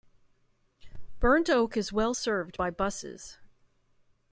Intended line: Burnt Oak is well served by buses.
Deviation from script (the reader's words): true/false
false